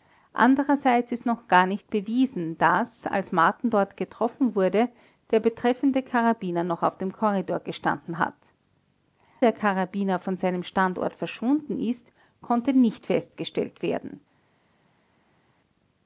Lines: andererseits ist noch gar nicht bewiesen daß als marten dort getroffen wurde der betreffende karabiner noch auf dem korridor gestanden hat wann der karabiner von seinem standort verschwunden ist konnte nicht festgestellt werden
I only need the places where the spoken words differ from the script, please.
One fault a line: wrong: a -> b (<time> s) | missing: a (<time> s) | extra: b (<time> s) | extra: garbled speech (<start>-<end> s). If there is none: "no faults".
missing: wann (8.3 s)